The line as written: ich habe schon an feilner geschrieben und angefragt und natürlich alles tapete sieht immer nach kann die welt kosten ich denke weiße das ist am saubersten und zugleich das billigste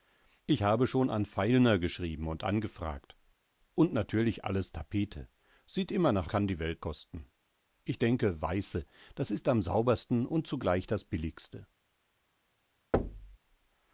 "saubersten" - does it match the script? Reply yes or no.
yes